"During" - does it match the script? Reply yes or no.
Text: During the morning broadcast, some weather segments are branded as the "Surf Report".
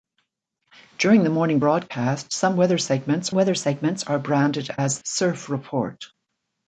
yes